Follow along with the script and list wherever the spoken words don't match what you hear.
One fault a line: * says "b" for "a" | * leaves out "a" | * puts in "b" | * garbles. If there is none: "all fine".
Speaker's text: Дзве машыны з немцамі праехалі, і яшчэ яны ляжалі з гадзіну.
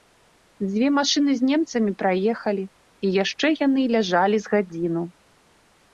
all fine